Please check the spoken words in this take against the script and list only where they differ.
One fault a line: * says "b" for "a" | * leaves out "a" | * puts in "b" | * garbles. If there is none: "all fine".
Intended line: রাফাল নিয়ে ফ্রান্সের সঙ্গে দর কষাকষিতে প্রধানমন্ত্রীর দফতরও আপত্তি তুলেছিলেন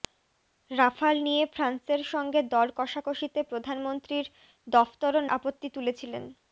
all fine